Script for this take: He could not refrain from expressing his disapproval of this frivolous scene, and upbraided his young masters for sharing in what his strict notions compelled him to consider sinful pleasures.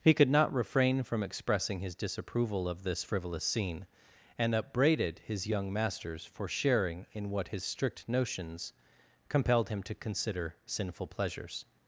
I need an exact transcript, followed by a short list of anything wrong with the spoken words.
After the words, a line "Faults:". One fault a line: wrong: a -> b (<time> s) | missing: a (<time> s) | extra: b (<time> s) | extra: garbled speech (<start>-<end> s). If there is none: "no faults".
He could not refrain from expressing his disapproval of this frivolous scene, and upbraided his young masters for sharing in what his strict notions compelled him to consider sinful pleasures.
Faults:
no faults